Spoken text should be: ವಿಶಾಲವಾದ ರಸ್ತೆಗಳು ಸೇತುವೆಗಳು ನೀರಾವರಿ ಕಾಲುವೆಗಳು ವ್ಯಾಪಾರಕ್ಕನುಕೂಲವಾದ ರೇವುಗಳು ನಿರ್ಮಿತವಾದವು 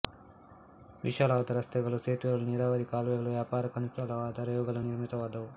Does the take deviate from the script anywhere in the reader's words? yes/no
no